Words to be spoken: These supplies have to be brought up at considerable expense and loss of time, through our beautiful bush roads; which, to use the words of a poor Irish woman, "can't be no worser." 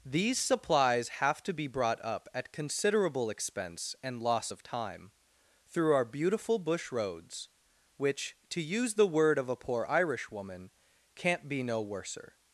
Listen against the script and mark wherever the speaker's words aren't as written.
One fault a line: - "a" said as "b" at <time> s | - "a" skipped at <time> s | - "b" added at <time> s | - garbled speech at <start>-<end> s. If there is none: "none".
- "words" said as "word" at 9.1 s